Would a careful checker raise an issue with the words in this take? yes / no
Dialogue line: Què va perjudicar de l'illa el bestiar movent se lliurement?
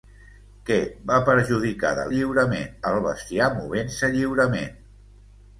yes